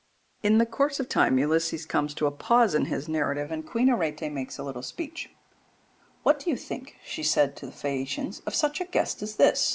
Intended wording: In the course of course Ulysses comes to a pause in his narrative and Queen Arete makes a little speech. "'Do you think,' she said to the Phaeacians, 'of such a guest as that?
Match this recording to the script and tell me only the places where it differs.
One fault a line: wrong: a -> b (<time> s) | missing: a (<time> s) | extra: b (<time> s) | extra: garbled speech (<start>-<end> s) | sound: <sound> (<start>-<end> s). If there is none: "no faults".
wrong: course -> time (1.1 s)
extra: What (6.2 s)
wrong: that -> this (9.4 s)